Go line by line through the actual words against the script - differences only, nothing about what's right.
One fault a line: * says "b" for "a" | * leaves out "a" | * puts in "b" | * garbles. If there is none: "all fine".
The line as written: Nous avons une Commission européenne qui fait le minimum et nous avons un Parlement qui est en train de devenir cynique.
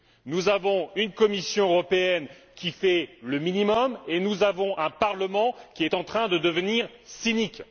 all fine